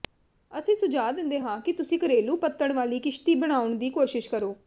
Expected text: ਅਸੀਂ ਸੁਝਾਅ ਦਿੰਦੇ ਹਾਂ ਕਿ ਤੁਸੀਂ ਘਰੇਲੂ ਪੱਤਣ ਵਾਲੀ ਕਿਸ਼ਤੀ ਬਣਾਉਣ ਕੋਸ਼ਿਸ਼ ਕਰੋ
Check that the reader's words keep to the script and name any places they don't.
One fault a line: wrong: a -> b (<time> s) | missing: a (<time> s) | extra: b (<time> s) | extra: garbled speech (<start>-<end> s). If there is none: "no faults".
extra: ਦੀ (3.7 s)